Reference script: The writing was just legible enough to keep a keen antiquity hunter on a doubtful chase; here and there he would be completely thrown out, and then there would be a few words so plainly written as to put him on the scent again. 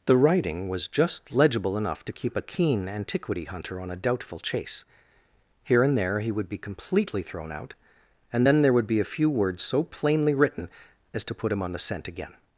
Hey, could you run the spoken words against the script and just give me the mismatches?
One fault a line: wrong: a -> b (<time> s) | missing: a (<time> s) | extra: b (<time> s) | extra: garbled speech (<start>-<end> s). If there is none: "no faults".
no faults